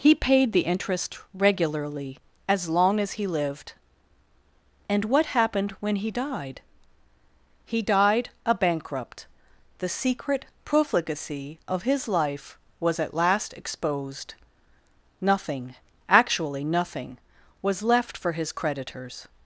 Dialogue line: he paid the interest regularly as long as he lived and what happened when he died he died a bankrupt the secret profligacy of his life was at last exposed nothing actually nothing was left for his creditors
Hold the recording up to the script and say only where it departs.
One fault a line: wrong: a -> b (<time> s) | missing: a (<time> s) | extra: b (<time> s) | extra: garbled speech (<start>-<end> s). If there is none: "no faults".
no faults